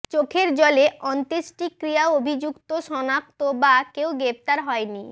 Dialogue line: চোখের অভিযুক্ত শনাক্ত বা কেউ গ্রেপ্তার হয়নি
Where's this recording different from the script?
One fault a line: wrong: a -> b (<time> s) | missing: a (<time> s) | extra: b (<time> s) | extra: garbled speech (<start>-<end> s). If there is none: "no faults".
extra: জলে অন্ত্যেষ্টিক্রিয়া (0.6 s)